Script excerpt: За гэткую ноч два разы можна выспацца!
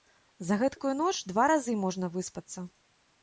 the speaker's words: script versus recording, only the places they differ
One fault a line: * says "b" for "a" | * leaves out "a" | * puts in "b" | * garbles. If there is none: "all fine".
all fine